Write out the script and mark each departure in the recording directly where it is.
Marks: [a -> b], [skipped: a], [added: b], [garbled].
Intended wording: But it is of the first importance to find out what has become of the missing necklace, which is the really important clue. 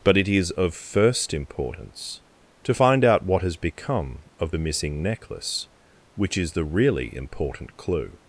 But it is of [skipped: the] first importance to find out what has become of the missing necklace, which is the really important clue.